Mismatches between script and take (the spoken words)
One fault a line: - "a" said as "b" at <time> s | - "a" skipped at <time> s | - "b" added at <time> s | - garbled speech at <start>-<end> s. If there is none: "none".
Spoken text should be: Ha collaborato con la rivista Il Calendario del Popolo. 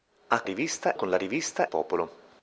- "collaborato" said as "rivista" at 0.4 s
- "Il Calendario del" skipped at 1.6 s